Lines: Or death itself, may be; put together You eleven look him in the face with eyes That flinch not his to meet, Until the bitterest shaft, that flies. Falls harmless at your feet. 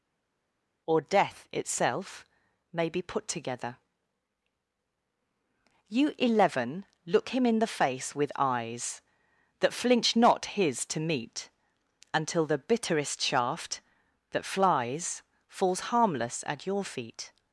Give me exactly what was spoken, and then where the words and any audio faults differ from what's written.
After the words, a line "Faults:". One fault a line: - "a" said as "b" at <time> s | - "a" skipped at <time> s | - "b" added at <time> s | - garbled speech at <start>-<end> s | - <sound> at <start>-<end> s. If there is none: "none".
Or death itself, may be; put together You eleven look him in the face with eyes That flinch not his to meet, Until the bitterest shaft, that flies. Falls harmless at your feet.
Faults:
none